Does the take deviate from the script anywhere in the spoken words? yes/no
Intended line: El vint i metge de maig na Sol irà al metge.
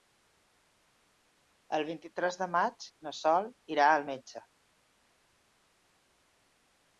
yes